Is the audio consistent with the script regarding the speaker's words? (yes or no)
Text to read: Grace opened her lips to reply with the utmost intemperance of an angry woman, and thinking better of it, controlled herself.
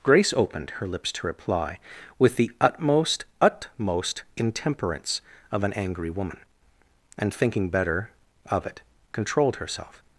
no